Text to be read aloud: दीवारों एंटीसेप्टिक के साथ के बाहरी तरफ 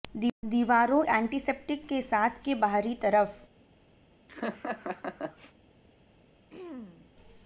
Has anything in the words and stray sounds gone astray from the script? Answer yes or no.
yes